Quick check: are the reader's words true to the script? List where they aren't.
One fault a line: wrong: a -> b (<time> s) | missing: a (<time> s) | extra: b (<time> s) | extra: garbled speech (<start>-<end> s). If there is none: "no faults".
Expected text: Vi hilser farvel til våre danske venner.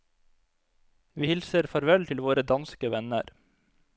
no faults